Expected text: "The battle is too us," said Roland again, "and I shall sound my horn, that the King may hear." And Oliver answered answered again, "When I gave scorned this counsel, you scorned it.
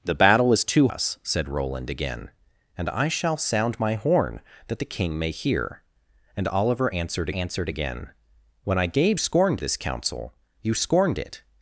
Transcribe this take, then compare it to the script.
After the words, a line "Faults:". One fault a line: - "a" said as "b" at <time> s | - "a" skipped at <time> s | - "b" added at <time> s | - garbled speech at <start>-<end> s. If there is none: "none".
"The battle is too us," said Roland again, "and I shall sound my horn, that the King may hear." And Oliver answered answered again, "When I gave scorned this counsel, you scorned it.
Faults:
none